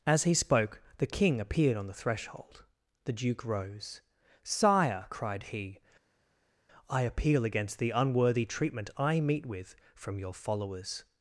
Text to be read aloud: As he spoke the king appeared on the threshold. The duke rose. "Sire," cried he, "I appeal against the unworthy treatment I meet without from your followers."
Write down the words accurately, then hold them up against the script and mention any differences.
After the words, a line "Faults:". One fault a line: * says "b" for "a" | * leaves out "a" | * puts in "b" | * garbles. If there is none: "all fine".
As he spoke the king appeared on the threshold. The duke rose. "Sire," cried he, "I appeal against the unworthy treatment I meet with from your followers."
Faults:
* says "with" for "without"